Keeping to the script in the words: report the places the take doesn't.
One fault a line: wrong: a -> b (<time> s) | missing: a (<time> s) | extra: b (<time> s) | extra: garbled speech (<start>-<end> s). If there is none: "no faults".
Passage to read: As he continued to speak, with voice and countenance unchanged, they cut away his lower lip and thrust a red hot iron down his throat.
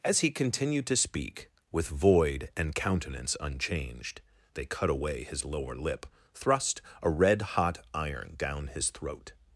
wrong: voice -> void (1.9 s)
missing: and (6.1 s)